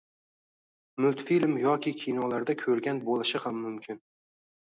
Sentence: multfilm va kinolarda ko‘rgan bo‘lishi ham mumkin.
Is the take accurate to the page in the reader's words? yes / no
no